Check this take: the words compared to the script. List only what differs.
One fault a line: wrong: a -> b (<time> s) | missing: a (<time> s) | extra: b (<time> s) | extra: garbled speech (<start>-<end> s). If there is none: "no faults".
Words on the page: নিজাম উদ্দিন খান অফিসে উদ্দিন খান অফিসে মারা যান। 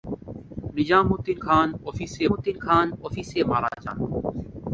no faults